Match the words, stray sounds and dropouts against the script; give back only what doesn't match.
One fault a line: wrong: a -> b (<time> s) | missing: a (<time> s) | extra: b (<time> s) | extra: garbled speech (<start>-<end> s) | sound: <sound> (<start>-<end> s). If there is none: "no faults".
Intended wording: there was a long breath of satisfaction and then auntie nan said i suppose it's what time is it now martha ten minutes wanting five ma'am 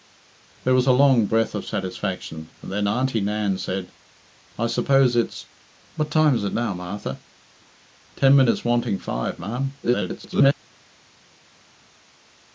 extra: garbled speech (9.8-10.5 s)